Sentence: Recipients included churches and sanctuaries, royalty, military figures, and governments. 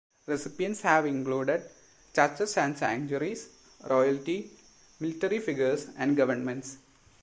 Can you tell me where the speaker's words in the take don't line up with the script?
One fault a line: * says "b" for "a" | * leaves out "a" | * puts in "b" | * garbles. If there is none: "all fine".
* puts in "have"